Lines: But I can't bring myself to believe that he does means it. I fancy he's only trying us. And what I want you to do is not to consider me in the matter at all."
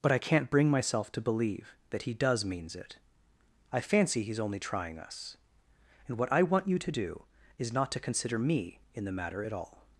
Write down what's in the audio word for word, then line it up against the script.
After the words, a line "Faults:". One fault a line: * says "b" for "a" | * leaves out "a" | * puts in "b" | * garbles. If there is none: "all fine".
But I can't bring myself to believe that he does means it. I fancy he's only trying us. And what I want you to do is not to consider me in the matter at all."
Faults:
all fine